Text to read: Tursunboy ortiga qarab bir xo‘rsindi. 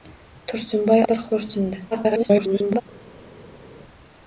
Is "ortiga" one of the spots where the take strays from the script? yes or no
yes